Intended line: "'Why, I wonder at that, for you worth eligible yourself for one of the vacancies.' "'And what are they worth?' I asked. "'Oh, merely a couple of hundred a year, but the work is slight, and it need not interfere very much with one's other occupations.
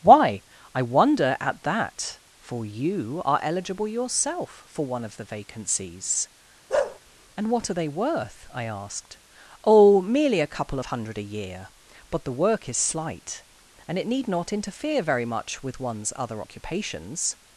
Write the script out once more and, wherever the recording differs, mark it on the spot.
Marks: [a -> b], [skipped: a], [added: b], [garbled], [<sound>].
"'Why, I wonder at that, for you [worth -> are] eligible yourself for one of the vacancies.' [bark] "'And what are they worth?' I asked. "'Oh, merely a couple of hundred a year, but the work is slight, and it need not interfere very much with one's other occupations.